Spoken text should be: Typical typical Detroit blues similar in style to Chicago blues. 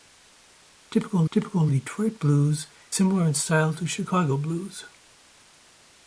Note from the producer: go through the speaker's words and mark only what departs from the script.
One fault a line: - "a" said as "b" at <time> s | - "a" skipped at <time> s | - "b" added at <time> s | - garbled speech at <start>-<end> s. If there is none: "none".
none